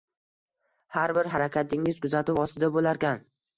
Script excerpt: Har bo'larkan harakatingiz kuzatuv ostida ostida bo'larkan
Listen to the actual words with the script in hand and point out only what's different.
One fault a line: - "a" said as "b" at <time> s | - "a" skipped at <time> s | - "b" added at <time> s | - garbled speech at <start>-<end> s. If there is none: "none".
- "bo'larkan" said as "bir" at 1.2 s
- "ostida" skipped at 2.8 s